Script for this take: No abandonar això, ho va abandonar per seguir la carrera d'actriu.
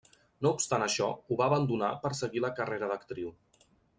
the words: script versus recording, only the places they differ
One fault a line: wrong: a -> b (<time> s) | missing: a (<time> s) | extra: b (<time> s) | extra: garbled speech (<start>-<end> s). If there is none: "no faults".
wrong: abandonar -> obstant (0.6 s)